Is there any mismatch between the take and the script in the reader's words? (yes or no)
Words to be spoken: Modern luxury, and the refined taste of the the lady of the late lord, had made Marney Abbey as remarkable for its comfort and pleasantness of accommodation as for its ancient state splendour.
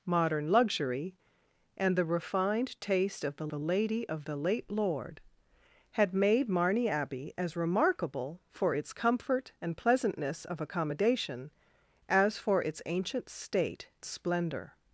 no